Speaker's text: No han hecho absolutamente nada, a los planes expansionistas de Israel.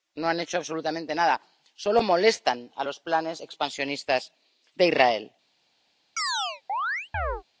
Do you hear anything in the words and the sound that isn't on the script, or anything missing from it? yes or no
yes